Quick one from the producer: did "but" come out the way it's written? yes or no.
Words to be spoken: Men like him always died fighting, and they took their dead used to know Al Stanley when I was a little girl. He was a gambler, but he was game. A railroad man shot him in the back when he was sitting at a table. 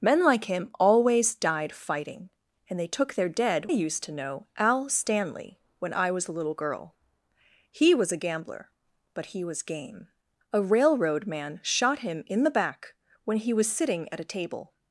yes